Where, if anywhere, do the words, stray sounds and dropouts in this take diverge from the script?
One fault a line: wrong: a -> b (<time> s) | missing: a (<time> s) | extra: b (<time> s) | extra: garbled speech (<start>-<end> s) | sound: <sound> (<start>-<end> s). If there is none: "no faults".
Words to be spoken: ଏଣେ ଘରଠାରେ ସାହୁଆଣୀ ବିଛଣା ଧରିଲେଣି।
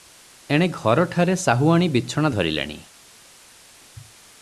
no faults